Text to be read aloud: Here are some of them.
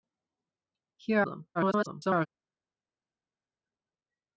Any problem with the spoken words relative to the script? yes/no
yes